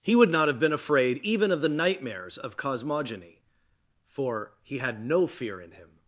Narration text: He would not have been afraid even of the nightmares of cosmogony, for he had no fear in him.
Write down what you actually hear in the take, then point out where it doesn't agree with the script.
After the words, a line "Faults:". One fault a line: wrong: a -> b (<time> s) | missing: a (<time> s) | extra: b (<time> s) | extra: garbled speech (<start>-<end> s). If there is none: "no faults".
He would not have been afraid even of the nightmares of cosmogony, for he had no fear in him.
Faults:
no faults